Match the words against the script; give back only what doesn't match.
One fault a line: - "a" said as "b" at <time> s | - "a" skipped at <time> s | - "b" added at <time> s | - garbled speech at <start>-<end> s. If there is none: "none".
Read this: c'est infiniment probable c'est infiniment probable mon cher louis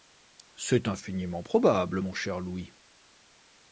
- "c'est infiniment probable" skipped at 2.0 s